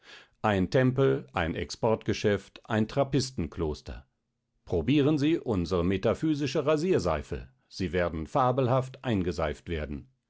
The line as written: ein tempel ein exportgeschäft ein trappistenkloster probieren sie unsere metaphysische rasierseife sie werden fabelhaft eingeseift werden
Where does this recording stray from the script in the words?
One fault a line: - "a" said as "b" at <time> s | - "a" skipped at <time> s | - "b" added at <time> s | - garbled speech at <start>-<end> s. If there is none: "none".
none